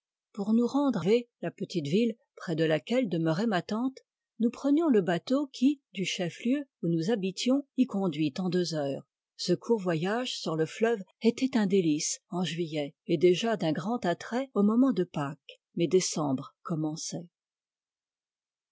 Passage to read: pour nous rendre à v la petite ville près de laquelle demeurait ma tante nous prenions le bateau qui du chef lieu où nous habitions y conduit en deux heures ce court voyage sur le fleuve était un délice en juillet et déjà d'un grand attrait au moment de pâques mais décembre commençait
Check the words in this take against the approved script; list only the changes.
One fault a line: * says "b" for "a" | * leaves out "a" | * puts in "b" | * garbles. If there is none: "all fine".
* leaves out "à"